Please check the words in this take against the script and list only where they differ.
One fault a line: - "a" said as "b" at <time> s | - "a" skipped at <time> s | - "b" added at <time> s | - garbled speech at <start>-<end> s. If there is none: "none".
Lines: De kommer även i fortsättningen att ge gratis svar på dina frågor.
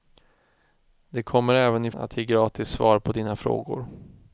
- "fortsättningen" skipped at 1.9 s